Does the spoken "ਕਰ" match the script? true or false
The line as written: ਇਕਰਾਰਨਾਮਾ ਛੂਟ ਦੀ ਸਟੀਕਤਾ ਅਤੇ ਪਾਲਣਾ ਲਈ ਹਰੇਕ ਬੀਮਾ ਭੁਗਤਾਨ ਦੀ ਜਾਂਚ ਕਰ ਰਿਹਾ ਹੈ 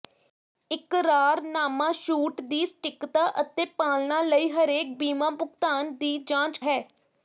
false